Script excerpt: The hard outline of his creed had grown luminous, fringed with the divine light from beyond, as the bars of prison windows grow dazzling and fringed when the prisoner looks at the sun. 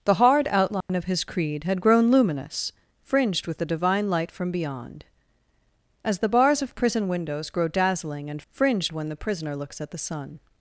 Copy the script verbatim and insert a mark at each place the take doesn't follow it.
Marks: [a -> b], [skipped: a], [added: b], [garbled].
The hard outline of his creed had grown luminous, fringed with the divine light from beyond, as the bars of prison windows grow dazzling and fringed when the prisoner looks at the sun.